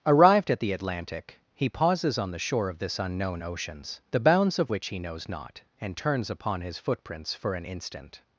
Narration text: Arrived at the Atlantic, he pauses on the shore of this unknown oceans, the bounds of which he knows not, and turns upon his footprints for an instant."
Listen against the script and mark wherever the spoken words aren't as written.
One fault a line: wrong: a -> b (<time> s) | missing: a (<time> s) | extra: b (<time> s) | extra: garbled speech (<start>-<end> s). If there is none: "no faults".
no faults